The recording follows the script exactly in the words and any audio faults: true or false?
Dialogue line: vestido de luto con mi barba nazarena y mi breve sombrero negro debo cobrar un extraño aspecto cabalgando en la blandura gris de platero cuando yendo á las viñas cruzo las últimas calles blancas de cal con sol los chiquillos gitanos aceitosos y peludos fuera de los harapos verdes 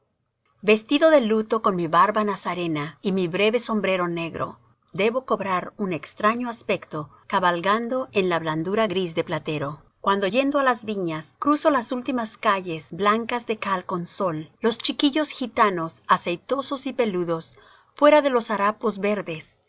true